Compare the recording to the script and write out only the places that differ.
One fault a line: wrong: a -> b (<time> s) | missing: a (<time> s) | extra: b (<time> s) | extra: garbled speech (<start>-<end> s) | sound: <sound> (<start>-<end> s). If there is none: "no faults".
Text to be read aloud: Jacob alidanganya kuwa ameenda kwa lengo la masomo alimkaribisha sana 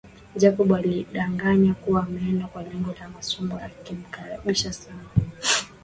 no faults